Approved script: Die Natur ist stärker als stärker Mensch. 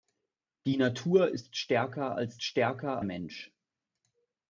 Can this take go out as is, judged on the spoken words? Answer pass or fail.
pass